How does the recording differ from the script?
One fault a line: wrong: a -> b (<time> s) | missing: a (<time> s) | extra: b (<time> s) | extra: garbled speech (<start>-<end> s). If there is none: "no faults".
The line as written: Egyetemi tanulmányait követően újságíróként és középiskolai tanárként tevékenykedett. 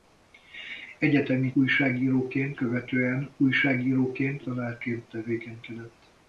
wrong: tanulmányait -> újságíróként (1.5 s)
missing: és középiskolai (4.4 s)